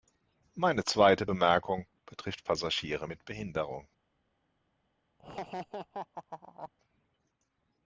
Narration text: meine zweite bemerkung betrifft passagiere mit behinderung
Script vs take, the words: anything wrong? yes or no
no